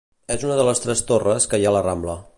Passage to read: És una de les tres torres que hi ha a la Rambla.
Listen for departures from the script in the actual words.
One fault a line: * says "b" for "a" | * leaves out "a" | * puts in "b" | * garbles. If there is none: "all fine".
all fine